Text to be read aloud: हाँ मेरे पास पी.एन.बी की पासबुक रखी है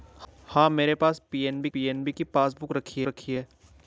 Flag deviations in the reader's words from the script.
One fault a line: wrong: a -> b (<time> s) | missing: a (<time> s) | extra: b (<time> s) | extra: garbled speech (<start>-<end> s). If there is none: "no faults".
extra: पी.एन.बी (1.7 s)
extra: रखी (3.0 s)